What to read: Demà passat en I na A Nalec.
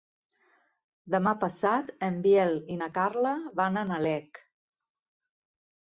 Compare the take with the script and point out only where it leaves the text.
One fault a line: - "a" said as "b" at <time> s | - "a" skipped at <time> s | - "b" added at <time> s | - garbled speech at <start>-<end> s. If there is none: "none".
- "Biel" added at 2.2 s
- "Carla van" added at 3.0 s